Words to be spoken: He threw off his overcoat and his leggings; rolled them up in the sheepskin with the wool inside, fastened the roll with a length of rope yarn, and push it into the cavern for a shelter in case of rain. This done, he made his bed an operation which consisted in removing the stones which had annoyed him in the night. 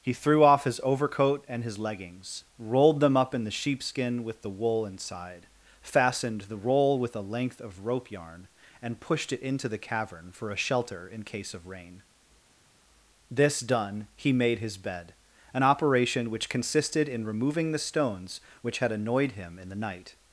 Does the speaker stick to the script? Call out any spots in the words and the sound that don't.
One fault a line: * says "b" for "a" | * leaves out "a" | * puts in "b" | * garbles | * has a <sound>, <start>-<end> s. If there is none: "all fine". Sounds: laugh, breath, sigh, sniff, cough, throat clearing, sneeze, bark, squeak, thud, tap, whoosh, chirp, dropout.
* says "pushed" for "push"